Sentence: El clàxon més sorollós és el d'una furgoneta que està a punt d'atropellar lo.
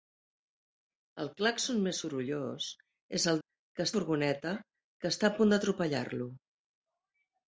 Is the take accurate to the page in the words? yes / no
no